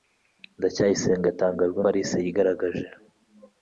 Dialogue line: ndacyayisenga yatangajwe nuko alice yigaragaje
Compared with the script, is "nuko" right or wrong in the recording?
wrong